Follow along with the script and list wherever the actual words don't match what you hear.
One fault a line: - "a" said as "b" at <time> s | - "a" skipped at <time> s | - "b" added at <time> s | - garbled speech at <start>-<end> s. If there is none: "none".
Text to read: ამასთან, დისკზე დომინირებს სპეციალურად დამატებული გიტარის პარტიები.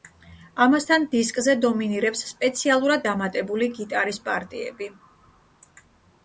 none